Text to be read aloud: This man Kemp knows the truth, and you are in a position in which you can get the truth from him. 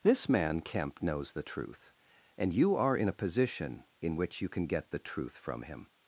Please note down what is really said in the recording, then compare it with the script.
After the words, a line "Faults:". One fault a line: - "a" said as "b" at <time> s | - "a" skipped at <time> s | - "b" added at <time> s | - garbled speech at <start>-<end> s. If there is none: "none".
This man Kemp knows the truth, and you are in a position in which you can get the truth from him.
Faults:
none